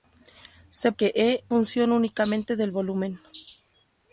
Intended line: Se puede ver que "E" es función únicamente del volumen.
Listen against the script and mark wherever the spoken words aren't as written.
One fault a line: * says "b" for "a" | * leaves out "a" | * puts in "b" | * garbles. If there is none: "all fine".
* leaves out "puede ver"
* leaves out "es"